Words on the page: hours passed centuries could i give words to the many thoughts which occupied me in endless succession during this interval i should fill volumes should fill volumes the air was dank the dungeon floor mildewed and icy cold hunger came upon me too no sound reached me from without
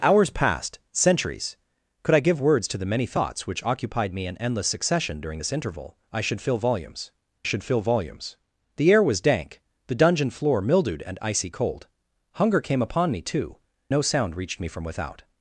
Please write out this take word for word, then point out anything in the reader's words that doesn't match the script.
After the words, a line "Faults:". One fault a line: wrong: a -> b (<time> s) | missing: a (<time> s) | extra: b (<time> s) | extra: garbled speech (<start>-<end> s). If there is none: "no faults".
hours passed centuries could i give words to the many thoughts which occupied me in endless succession during this interval i should fill volumes should fill volumes the air was dank the dungeon floor mildewed and icy cold hunger came upon me too no sound reached me from without
Faults:
no faults